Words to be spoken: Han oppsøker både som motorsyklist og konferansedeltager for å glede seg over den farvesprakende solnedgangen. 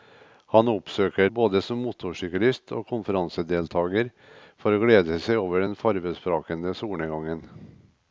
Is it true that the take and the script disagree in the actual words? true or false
false